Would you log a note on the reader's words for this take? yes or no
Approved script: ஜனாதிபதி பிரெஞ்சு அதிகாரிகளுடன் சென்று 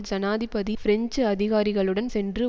no